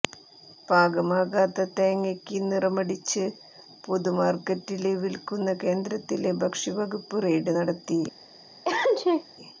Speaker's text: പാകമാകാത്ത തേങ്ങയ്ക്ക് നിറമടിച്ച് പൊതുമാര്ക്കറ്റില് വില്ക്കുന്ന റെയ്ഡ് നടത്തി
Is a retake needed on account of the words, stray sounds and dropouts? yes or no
yes